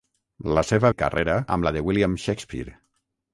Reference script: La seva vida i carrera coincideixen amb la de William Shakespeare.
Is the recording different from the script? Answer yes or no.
yes